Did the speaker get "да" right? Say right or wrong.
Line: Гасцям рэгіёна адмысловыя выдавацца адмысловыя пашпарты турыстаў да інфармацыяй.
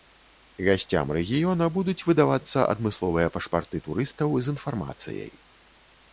wrong